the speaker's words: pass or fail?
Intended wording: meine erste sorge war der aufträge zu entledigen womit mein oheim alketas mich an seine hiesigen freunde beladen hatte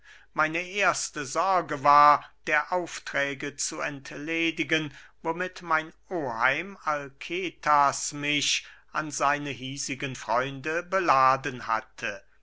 pass